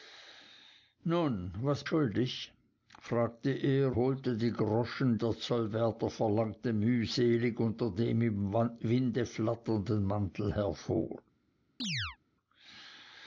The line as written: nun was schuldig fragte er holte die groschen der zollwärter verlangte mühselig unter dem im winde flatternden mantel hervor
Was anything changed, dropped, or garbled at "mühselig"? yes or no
no